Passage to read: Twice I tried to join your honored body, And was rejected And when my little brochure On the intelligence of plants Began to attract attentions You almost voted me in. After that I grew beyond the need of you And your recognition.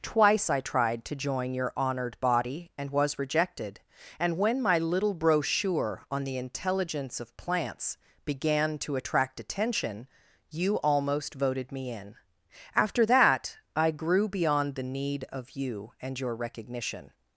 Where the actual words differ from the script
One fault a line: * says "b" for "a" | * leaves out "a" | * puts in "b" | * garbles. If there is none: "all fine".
* says "attention" for "attentions"